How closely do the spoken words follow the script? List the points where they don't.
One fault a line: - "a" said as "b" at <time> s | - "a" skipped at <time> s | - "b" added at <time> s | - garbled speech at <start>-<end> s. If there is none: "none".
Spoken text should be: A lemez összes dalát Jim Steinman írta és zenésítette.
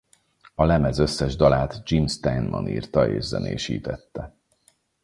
none